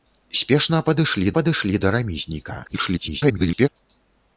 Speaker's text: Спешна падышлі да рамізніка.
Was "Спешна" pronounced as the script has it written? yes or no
yes